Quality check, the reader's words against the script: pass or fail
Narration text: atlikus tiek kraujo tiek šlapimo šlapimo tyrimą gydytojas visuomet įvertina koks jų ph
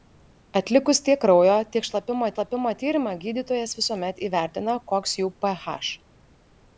pass